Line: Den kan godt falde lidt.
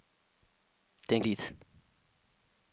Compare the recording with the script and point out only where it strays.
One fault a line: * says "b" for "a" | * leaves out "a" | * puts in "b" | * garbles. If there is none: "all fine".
* leaves out "kan godt falde"